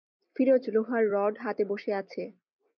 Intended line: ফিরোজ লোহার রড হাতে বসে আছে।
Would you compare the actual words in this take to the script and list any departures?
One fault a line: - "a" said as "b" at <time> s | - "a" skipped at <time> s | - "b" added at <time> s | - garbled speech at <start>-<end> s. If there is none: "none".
none